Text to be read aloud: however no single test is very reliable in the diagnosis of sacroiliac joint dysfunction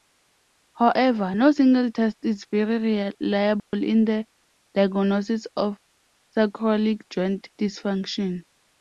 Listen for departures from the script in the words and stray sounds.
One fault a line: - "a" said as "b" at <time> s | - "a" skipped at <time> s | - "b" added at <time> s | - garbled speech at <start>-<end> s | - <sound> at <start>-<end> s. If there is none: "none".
- dropout at 3.6-3.7 s